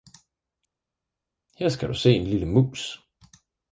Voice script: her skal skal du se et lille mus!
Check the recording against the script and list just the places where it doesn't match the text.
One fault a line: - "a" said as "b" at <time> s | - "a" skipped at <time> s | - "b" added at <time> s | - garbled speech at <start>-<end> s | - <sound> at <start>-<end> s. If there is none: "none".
- "skal" skipped at 1.9 s
- "et" said as "en" at 2.1 s